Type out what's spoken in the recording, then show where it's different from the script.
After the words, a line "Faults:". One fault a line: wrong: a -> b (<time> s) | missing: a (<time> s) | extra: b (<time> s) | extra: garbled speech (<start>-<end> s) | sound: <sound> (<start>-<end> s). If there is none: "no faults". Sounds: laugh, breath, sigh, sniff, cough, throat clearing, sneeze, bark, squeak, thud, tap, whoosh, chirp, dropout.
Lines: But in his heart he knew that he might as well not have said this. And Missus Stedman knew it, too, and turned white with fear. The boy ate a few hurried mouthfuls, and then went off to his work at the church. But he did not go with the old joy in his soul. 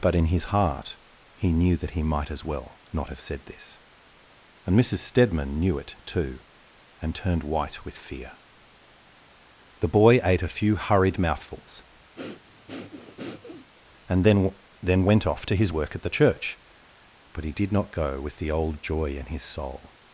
But in his heart he knew that he might as well not have said this. And Missus Stedman knew it, too, and turned white with fear. The boy ate a few hurried mouthfuls, and then then went off to his work at the church. But he did not go with the old joy in his soul.
Faults:
sound: breath (12.2-13.7 s)
extra: then (14.8 s)